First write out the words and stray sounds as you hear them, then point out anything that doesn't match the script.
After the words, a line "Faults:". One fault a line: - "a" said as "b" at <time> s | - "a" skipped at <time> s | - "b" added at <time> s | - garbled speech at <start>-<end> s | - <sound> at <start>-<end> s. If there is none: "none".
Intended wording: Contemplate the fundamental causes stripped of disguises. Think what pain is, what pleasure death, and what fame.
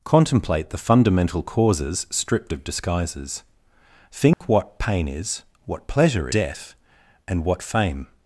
Contemplate the fundamental causes stripped of disguises. Think what pain is, what pleasure death, and what fame.
Faults:
- dropout at 4.3-4.4 s